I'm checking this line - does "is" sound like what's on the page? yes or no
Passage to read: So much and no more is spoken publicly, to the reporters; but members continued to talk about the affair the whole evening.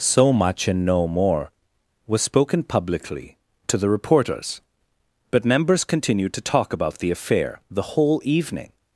no